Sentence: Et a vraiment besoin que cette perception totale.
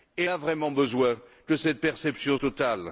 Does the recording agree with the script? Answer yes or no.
yes